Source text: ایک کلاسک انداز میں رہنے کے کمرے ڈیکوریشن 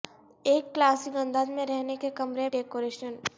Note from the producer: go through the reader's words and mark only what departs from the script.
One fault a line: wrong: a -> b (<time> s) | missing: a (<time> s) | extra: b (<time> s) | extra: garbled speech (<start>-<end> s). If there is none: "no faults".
no faults